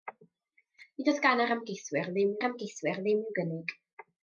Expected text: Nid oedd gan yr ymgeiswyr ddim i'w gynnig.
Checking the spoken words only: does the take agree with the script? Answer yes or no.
no